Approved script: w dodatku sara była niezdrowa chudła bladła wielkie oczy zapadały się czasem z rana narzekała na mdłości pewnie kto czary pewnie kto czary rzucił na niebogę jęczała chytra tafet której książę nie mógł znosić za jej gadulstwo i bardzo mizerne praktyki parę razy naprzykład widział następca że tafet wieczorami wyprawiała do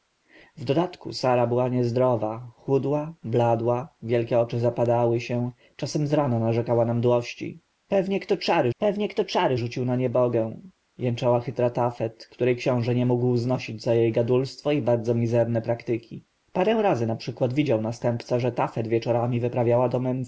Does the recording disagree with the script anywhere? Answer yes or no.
no